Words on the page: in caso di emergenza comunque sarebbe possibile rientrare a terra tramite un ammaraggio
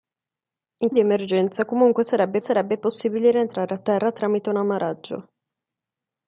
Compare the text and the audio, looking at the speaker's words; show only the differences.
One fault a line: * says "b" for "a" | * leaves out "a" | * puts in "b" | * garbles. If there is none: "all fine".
* leaves out "caso"
* puts in "sarebbe"